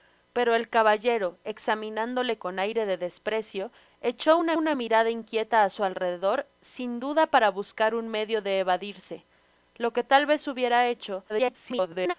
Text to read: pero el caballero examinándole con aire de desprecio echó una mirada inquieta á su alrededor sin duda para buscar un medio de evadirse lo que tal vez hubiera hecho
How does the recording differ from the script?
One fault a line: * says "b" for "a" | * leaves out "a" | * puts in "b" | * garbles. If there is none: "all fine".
* puts in "una"
* garbles